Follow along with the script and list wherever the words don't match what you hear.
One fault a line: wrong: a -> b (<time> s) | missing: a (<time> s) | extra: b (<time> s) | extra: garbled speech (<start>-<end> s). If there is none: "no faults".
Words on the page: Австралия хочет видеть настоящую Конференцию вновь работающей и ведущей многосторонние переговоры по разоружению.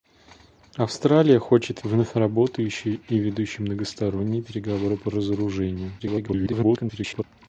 missing: видеть настоящую Конференцию (1.8 s)
extra: garbled speech (6.0-7.2 s)